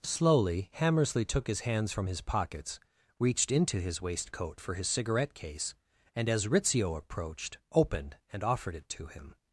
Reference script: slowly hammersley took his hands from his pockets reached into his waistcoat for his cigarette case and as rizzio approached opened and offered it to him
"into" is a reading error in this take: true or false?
false